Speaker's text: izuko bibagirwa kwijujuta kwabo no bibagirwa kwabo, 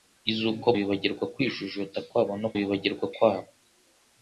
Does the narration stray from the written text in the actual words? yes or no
no